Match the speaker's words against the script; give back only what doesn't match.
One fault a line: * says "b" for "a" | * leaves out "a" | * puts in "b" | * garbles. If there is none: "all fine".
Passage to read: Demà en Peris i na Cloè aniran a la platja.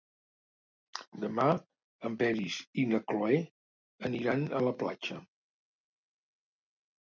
all fine